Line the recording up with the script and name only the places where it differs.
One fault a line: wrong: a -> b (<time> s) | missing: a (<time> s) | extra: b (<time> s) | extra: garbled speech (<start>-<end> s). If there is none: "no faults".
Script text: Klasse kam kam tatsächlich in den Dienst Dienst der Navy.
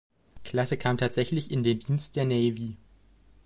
missing: kam (1.0 s)
missing: Dienst (2.2 s)